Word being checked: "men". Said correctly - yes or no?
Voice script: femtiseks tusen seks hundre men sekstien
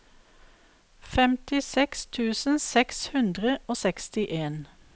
no